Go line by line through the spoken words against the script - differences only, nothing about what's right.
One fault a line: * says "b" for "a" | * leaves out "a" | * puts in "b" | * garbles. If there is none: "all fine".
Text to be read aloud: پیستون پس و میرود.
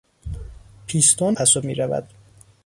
all fine